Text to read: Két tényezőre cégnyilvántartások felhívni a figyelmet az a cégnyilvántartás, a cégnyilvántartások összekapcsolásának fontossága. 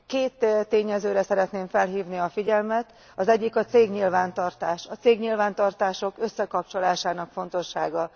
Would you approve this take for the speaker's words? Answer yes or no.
no